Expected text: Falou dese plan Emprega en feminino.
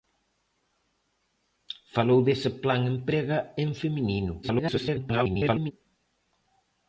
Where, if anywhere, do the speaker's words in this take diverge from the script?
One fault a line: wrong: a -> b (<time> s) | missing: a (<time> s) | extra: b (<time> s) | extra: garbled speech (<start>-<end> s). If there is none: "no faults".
extra: garbled speech (4.4-5.7 s)